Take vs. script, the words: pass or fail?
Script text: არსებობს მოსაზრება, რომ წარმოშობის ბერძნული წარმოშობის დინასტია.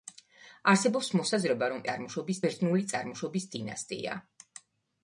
pass